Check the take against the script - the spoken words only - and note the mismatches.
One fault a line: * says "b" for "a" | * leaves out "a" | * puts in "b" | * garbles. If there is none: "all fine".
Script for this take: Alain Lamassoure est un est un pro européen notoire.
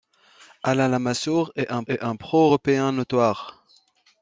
all fine